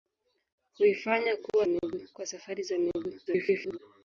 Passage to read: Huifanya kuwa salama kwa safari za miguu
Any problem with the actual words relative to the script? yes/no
yes